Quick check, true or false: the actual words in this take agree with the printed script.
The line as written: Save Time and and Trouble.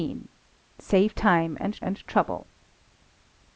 true